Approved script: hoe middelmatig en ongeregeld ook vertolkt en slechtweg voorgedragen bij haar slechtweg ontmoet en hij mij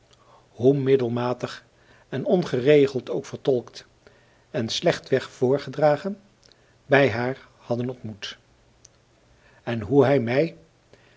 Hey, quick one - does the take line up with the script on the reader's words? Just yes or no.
no